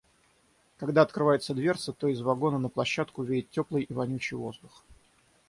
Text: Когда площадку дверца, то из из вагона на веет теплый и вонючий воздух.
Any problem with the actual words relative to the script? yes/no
yes